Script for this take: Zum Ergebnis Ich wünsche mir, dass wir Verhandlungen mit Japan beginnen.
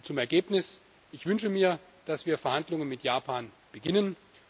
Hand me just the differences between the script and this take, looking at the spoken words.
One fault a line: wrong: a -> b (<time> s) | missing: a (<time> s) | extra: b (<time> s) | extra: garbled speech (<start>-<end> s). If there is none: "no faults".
no faults